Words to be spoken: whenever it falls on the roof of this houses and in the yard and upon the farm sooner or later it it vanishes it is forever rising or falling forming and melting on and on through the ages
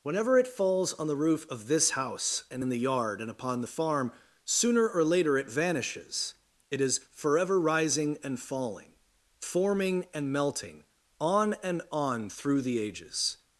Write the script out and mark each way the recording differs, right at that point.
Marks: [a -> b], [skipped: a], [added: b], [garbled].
whenever it falls on the roof of this [houses -> house] and in the yard and upon the farm sooner or later it [skipped: it] vanishes it is forever rising [or -> and] falling forming and melting on and on through the ages